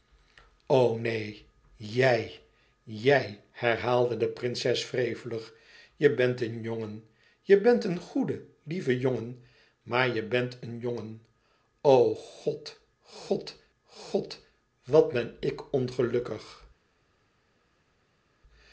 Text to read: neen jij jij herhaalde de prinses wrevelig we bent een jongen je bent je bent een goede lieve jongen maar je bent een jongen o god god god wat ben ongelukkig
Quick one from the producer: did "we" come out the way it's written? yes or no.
no